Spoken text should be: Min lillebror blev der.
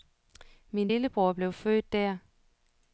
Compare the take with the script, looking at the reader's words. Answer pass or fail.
fail